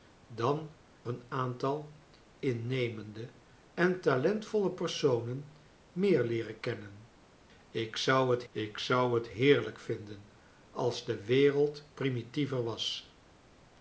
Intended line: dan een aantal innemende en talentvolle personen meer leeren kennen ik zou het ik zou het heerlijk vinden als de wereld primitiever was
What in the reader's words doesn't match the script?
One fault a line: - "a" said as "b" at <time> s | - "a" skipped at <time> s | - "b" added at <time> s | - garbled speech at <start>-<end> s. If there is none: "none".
none